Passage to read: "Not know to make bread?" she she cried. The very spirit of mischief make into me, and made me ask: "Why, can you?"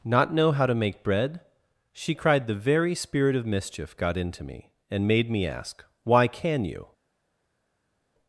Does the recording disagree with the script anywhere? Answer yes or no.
yes